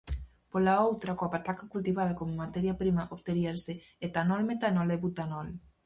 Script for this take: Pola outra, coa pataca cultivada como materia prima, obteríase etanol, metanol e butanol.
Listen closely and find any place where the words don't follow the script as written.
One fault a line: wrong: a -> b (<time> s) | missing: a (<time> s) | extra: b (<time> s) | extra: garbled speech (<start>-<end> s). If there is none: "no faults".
no faults